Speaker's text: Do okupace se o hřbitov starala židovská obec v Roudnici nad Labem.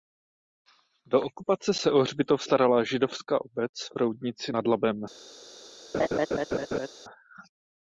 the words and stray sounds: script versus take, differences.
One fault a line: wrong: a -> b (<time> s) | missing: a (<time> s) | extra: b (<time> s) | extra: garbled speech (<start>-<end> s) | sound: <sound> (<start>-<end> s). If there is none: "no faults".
sound: laugh (5.9-6.9 s)